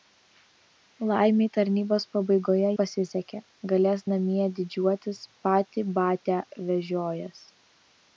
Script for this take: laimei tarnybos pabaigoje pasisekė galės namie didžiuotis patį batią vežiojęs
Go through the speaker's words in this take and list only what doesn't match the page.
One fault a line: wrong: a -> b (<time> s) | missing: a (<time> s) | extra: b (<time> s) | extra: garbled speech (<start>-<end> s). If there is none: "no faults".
no faults